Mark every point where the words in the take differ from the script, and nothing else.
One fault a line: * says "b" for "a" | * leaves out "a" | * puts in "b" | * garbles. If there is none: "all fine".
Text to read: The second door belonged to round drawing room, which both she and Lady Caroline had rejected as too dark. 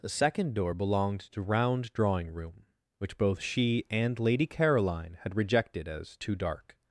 all fine